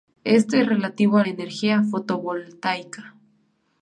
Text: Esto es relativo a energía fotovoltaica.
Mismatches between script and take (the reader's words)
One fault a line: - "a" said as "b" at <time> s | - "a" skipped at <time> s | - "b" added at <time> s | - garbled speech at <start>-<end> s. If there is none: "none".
none